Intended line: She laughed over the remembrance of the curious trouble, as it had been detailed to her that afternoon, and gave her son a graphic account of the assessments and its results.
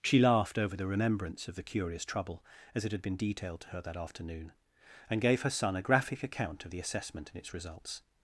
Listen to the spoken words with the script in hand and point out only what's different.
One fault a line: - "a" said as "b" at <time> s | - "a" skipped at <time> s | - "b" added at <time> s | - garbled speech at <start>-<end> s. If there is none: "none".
- "assessments" said as "assessment" at 6.8 s